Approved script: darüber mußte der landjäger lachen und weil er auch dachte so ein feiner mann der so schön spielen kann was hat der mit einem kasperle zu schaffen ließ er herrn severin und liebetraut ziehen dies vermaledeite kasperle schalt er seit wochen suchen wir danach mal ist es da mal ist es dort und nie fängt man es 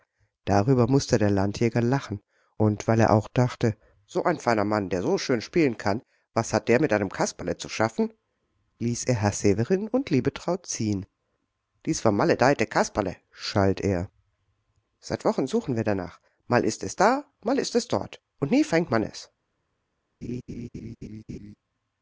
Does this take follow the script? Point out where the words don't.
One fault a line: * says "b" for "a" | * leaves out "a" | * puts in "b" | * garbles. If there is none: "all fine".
all fine